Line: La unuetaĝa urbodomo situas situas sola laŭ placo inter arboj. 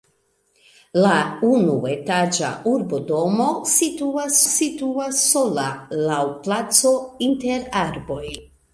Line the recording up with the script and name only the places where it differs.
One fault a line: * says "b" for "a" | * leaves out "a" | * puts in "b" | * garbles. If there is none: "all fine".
all fine